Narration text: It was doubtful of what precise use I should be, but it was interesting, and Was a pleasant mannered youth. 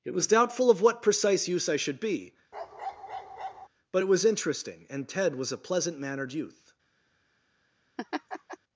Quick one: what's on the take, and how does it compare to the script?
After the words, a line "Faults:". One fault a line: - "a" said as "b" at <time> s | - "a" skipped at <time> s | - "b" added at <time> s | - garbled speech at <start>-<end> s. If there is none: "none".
It was doubtful of what precise use I should be, but it was interesting, and Ted was a pleasant mannered youth.
Faults:
- "Ted" added at 5.1 s